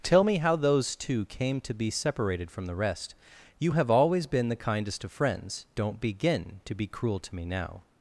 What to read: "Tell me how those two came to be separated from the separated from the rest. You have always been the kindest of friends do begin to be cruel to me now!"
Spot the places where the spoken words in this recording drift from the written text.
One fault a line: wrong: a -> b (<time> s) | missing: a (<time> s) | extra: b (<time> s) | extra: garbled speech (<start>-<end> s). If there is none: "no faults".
missing: separated from the (2.8 s)
wrong: do -> don't (5.7 s)